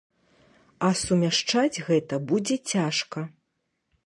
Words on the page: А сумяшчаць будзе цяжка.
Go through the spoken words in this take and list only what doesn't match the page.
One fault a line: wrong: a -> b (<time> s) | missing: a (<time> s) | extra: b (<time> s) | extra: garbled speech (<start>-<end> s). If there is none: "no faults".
extra: гэта (1.9 s)